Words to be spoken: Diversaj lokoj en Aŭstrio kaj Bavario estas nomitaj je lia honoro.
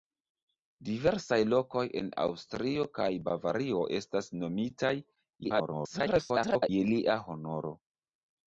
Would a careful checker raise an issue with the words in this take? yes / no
yes